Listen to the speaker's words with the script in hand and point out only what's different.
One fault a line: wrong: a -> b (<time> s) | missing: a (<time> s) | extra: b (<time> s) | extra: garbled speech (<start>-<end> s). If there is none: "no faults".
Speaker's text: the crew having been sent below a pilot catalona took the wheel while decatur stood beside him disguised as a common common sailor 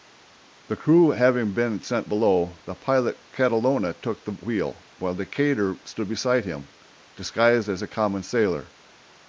wrong: a -> the (2.7 s)
missing: common (8.2 s)